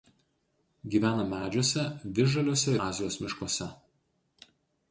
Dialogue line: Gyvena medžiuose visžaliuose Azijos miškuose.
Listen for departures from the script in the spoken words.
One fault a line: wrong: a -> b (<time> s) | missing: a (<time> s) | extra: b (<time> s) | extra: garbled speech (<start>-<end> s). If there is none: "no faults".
no faults